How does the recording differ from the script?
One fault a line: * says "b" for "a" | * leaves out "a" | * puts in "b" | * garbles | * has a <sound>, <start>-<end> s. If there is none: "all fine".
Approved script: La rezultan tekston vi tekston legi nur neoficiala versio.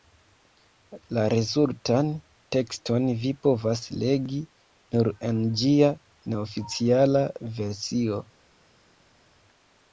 * says "povas" for "tekston"
* puts in "en ĝia"